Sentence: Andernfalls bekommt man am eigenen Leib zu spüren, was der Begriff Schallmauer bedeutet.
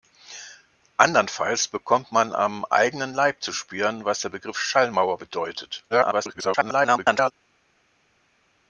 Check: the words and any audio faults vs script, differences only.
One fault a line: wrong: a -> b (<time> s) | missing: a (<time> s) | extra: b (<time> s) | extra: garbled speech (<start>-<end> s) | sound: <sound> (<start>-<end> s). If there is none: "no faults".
extra: garbled speech (5.9-7.3 s)